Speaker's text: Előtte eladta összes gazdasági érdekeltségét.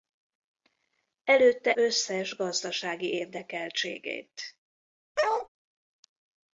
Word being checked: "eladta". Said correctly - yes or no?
no